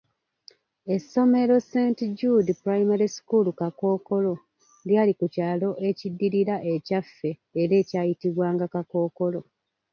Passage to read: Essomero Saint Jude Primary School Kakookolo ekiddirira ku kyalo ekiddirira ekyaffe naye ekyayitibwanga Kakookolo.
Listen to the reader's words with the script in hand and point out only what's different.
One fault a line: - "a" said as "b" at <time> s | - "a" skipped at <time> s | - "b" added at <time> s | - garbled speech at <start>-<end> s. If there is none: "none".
- "ekiddirira" said as "lyali" at 4.9 s
- "naye" said as "era" at 7.6 s